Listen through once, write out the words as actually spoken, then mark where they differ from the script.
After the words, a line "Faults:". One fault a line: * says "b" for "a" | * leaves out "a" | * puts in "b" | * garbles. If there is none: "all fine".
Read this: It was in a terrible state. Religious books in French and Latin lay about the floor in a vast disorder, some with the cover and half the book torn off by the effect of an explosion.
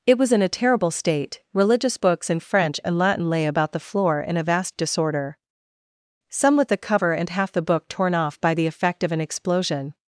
It was in a terrible state. Religious books in French and Latin lay about the floor in a vast disorder, some with the cover and half the book torn off by the effect of an explosion.
Faults:
all fine